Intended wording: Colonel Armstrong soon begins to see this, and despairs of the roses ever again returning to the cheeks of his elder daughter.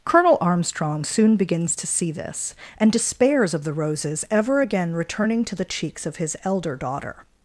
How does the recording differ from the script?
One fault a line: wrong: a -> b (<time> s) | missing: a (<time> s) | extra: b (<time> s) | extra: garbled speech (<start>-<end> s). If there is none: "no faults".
no faults